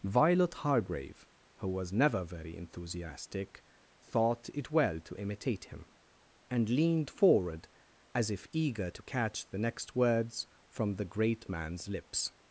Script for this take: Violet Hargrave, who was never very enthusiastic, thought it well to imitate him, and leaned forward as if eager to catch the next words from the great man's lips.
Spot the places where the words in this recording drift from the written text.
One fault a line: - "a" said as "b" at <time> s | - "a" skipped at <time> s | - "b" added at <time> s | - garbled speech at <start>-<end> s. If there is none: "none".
none